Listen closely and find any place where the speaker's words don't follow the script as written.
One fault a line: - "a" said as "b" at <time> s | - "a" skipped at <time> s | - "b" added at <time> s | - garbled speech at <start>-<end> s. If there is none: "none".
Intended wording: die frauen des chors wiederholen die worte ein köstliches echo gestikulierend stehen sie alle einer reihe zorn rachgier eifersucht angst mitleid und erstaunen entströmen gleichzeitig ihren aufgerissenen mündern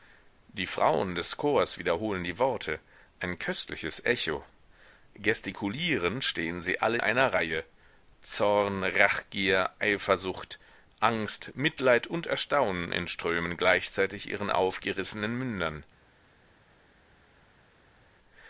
none